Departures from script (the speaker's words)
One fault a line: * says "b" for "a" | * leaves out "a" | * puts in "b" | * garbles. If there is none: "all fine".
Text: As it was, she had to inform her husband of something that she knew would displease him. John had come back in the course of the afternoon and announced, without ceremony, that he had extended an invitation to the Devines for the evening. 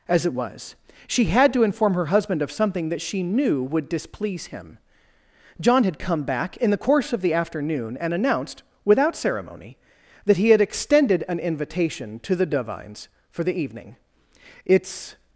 * puts in "It's"